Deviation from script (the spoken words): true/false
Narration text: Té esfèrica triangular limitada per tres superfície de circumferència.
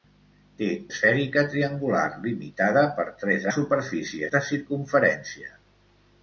false